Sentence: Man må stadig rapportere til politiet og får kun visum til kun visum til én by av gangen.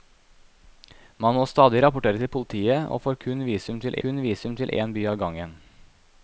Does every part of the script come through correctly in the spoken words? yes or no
yes